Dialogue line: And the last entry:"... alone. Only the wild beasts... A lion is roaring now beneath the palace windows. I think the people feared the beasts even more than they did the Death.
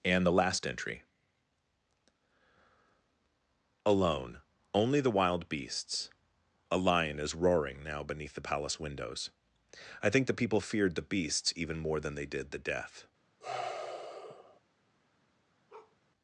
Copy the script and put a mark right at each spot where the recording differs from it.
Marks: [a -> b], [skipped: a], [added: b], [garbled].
And the last entry:"... alone. Only the wild beasts... A lion is roaring now beneath the palace windows. I think the people feared the beasts even more than they did the Death.